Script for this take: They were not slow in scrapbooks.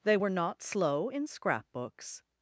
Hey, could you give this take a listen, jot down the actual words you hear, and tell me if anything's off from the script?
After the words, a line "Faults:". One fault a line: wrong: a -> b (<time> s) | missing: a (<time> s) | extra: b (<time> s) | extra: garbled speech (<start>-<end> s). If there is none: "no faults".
They were not slow in scrapbooks.
Faults:
no faults